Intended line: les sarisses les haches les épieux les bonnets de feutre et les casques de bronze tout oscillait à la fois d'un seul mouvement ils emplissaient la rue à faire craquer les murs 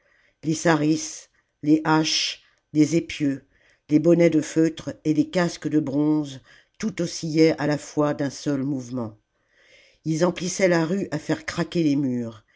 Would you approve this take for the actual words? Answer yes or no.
yes